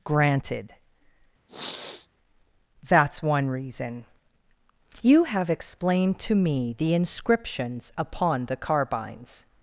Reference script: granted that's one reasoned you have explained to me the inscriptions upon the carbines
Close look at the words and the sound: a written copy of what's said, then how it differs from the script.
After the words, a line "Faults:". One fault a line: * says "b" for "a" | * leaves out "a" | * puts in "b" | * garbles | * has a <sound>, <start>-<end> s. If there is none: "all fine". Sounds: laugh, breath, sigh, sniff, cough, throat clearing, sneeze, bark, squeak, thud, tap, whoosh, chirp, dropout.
granted that's one reason you have explained to me the inscriptions upon the carbines
Faults:
* has a sniff, 1.5-2.1 s
* says "reason" for "reasoned"